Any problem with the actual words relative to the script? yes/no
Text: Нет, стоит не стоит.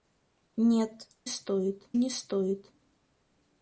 no